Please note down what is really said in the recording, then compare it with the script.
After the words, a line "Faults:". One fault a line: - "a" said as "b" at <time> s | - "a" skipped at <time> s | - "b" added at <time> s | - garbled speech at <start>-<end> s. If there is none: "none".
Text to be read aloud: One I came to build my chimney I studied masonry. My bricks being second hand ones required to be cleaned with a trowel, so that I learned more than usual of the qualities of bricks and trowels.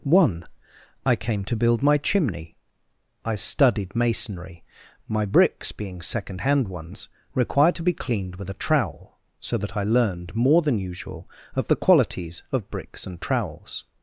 One I came to build my chimney I studied masonry. My bricks being second hand ones required to be cleaned with a trowel, so that I learned more than usual of the qualities of bricks and trowels.
Faults:
none